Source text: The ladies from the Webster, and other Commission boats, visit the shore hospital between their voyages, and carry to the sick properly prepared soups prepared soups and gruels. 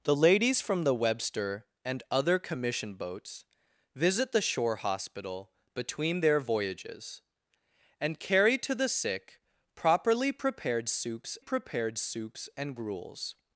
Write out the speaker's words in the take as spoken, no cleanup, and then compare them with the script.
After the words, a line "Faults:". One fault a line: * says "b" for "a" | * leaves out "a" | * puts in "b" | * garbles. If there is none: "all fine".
The ladies from the Webster, and other Commission boats, visit the shore hospital between their voyages, and carry to the sick properly prepared soups prepared soups and gruels.
Faults:
all fine